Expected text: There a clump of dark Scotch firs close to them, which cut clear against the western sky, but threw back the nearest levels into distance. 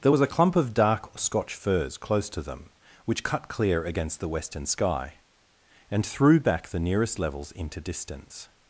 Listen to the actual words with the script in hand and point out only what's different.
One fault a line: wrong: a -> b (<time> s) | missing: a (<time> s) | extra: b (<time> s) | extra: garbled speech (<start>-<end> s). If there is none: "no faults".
extra: was (0.1 s)
wrong: but -> and (5.9 s)